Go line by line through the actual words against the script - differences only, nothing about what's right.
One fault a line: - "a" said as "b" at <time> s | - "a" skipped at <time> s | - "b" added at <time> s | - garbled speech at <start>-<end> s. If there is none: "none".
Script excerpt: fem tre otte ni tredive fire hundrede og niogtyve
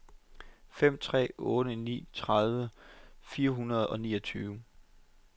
none